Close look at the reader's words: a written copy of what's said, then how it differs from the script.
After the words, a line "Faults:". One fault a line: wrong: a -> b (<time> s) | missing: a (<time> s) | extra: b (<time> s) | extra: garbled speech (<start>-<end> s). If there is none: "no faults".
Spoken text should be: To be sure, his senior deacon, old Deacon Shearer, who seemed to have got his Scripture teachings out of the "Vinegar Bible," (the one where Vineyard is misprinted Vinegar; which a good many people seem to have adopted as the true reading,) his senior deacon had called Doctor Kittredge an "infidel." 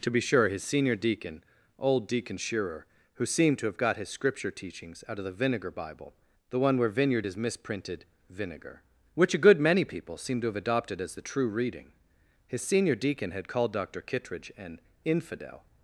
To be sure, his senior deacon, old Deacon Shearer, who seemed to have got his Scripture teachings out of the "Vinegar Bible," (the one where Vineyard is misprinted Vinegar; which a good many people seem to have adopted as the true reading,) his senior deacon had called Doctor Kittredge an "infidel."
Faults:
no faults